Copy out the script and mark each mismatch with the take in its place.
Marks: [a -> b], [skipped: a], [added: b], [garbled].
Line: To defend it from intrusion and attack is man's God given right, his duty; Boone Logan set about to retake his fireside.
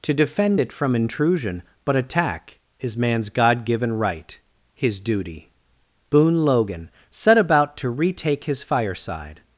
To defend it from intrusion [and -> but] attack is man's God given right, his duty; Boone Logan set about to retake his fireside.